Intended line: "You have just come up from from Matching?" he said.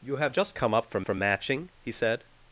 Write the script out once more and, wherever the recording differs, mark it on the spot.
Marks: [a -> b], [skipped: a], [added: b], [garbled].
"You have just come up from from Matching?" he said.